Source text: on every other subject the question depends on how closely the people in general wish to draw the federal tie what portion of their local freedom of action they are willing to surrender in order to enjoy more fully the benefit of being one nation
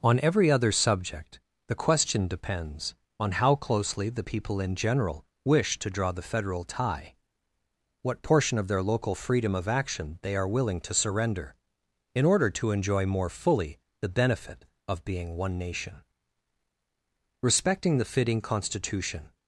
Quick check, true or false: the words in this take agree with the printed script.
false